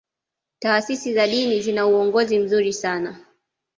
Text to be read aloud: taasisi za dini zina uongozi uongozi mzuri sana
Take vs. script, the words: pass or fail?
fail